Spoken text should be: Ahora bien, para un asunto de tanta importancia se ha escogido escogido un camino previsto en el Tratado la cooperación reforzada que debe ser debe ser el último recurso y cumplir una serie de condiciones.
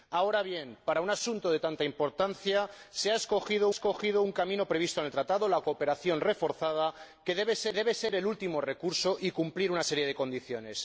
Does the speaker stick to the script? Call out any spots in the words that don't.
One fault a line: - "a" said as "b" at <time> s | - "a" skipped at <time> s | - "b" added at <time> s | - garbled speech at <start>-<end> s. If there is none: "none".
none